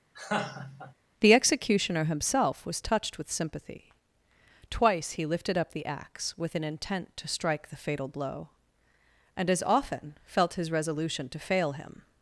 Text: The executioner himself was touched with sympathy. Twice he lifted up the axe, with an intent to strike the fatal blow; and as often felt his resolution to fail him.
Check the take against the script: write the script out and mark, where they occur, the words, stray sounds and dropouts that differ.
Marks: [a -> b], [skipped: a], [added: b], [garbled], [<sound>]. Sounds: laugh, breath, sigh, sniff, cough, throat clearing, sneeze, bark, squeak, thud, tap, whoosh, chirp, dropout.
[laugh] The executioner himself was touched with sympathy. Twice he lifted up the axe, with an intent to strike the fatal blow; and as often felt his resolution to fail him.